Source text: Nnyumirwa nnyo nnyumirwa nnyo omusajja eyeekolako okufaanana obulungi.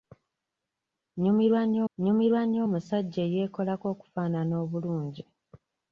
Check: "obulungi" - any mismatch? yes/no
no